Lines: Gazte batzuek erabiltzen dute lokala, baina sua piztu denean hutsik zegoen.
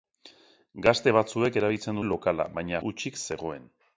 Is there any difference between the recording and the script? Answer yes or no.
yes